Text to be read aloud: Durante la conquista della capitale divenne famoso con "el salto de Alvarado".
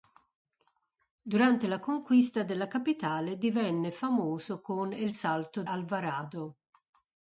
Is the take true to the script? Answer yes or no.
no